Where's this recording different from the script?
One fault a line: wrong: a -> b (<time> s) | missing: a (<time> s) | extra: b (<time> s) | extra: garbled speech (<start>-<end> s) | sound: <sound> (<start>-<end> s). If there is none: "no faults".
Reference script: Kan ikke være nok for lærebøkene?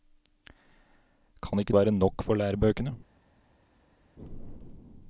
no faults